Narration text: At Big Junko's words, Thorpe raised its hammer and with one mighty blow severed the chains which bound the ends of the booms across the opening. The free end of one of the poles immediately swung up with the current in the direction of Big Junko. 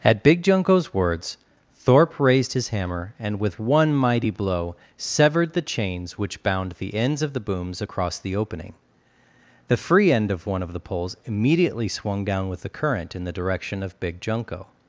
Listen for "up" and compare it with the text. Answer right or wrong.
wrong